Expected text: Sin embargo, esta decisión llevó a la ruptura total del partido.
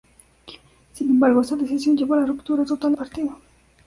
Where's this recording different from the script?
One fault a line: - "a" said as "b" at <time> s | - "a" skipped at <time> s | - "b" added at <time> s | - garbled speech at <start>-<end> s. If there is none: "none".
- "del" skipped at 2.9 s